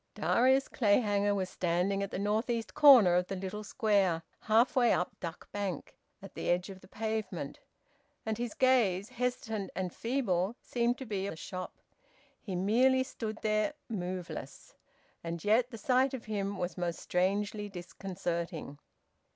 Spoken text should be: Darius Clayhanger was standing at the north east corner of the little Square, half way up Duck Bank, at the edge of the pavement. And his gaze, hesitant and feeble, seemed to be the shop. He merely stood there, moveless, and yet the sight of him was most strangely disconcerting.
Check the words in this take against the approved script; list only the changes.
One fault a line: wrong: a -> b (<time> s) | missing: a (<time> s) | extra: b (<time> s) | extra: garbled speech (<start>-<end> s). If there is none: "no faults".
no faults